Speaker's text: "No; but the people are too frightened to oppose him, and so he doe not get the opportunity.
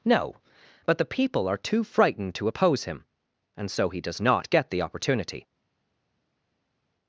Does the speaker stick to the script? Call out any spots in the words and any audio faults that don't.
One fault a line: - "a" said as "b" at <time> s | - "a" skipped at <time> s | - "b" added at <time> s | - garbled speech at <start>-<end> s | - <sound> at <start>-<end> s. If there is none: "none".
- "doe" said as "does" at 4.0 s